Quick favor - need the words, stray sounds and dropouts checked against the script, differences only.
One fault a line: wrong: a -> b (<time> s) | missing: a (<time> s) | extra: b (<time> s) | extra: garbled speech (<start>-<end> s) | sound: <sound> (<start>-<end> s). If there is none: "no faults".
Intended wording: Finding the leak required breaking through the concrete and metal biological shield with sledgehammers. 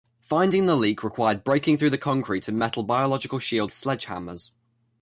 missing: with (3.7 s)